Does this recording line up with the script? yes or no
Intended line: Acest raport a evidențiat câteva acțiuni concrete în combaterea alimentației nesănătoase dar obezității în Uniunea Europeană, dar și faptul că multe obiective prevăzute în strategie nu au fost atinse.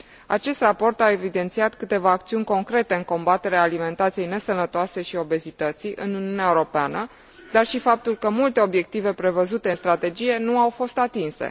no